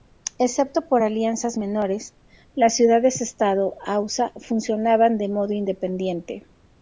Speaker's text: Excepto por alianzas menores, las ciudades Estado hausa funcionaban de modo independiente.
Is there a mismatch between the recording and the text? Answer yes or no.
no